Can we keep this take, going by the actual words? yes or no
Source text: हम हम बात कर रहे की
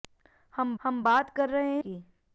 yes